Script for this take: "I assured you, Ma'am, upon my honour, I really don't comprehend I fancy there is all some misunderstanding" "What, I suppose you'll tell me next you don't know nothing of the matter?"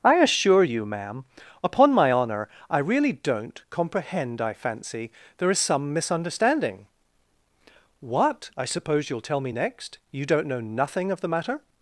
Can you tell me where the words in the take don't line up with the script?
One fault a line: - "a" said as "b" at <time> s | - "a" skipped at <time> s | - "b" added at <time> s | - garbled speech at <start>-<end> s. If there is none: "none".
- "assured" said as "assure" at 0.1 s
- "all" skipped at 5.6 s